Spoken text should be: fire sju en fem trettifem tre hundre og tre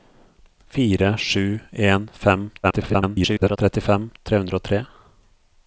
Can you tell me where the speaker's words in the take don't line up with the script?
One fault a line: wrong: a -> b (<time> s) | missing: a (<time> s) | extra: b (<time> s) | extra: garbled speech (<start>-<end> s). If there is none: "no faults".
extra: garbled speech (2.6-3.6 s)